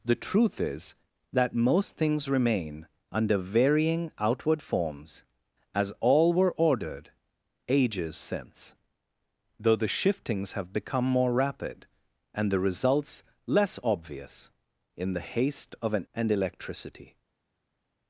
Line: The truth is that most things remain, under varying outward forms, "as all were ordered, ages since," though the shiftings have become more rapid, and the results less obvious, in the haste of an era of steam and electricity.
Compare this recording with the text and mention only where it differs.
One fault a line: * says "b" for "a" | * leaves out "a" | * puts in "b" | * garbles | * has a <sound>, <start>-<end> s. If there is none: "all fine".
* leaves out "era of steam"